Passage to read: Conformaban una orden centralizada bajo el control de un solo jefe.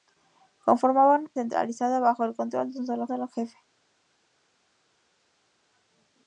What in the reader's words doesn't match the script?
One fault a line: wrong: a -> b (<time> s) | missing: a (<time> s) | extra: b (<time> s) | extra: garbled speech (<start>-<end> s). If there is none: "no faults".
missing: una orden (1.3 s)
extra: solo (3.1 s)